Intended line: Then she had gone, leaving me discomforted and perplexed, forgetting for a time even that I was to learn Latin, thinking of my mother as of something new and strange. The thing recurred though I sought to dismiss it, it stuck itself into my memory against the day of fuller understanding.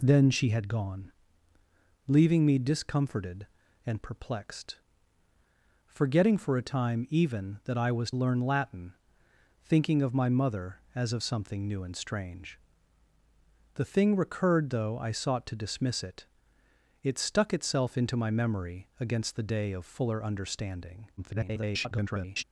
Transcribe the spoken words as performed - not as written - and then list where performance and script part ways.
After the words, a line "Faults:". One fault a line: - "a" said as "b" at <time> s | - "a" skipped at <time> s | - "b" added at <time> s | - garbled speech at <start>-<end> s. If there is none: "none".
Then she had gone, leaving me discomforted and perplexed, forgetting for a time even that I was learn Latin, thinking of my mother as of something new and strange. The thing recurred though I sought to dismiss it, it stuck itself into my memory against the day of fuller understanding. [garbled]
Faults:
- "to" skipped at 8.1 s
- garbled speech at 21.2-22.4 s